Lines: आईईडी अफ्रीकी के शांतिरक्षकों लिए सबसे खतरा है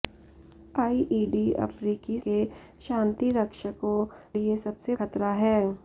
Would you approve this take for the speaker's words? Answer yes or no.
yes